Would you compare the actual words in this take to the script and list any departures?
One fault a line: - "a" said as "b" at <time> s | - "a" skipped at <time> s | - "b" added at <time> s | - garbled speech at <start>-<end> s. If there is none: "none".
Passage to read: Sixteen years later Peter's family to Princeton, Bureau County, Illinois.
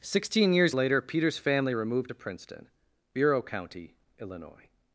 - "removed" added at 1.7 s